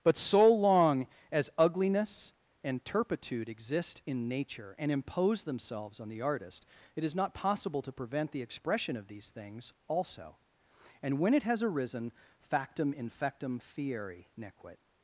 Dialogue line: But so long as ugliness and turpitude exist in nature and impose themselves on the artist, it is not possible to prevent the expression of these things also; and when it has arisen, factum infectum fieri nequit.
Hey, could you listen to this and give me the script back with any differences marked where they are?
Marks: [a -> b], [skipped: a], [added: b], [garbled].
But so long as ugliness and turpitude exist in nature and impose themselves on the artist, it is not possible to prevent the expression of these things also; and when it has arisen, factum infectum fieri nequit.